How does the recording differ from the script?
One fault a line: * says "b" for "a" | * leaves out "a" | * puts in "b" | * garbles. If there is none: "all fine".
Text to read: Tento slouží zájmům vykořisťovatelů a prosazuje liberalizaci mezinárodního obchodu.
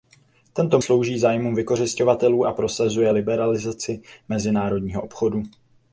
all fine